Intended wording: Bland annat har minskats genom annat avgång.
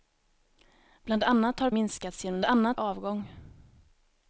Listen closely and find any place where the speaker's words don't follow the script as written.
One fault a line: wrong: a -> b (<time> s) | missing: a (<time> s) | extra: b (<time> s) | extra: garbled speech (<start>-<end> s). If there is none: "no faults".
no faults